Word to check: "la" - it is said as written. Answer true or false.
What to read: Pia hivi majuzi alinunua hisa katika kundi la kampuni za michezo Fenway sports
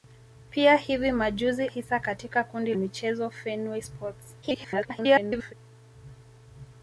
false